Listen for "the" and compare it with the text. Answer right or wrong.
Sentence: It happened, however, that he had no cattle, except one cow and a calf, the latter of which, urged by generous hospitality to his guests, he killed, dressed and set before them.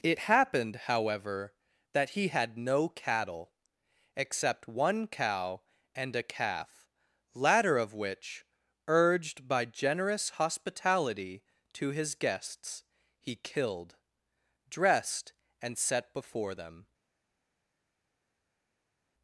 wrong